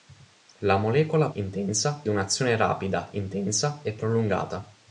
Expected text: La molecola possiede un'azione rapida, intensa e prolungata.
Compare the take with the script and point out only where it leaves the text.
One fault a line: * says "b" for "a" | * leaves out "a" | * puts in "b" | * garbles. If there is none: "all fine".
* says "intensa" for "possiede"